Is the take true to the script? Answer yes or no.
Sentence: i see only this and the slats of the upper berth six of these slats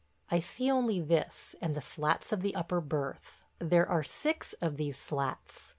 no